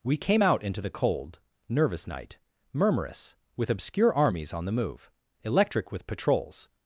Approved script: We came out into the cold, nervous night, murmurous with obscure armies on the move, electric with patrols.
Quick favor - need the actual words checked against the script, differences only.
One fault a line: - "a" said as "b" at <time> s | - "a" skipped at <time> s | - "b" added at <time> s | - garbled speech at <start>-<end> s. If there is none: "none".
none